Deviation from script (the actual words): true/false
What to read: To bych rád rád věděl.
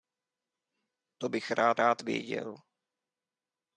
false